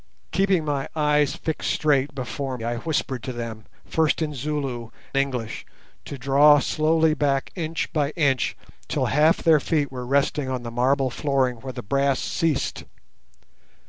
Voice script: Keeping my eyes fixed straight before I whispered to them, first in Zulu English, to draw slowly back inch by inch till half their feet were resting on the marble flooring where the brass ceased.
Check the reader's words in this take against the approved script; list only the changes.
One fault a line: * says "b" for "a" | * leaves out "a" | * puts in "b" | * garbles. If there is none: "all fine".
all fine